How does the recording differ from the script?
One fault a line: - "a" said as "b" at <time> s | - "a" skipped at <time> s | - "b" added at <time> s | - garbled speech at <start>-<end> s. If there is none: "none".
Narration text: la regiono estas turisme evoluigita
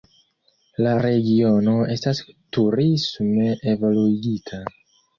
none